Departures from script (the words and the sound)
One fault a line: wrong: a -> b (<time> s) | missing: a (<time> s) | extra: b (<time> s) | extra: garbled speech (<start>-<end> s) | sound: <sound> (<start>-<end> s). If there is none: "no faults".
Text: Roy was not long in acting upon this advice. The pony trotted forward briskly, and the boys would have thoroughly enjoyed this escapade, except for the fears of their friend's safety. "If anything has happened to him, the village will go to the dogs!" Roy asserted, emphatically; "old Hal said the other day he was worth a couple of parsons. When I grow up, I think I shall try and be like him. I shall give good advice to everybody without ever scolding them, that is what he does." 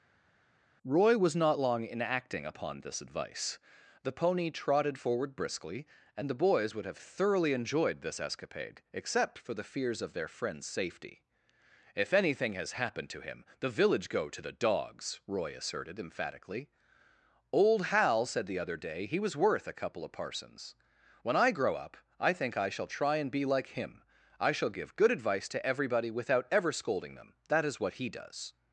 missing: will (14.1 s)